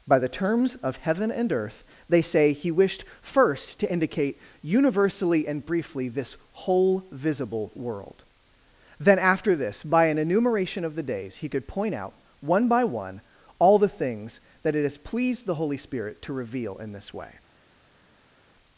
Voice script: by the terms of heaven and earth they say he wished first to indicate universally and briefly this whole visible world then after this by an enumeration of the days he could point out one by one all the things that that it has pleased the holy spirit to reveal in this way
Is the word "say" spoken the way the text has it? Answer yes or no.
yes